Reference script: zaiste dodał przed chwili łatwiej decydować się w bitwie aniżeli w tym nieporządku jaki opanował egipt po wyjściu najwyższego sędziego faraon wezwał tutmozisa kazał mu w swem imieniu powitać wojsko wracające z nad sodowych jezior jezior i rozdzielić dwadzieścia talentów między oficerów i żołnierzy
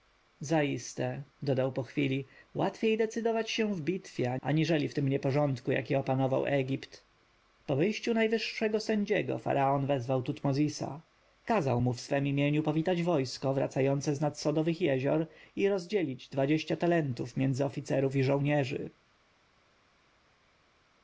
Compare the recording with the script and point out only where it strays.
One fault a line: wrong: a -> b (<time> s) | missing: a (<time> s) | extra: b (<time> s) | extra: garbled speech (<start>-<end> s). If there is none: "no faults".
wrong: przed -> po (1.7 s)
missing: jezior (15.3 s)